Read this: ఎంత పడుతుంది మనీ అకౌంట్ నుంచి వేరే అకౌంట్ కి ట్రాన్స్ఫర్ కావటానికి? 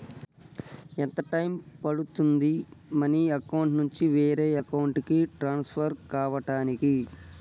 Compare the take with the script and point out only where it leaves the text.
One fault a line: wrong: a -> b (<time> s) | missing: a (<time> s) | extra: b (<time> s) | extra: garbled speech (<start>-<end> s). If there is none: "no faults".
extra: టైం (1.3 s)